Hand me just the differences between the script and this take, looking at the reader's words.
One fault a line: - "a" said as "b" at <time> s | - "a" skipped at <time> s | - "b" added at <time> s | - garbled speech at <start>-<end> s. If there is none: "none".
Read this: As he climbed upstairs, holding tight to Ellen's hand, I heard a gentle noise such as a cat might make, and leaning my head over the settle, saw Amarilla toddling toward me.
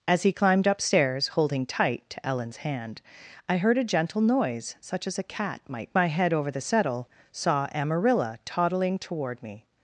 - "make and leaning" skipped at 5.9 s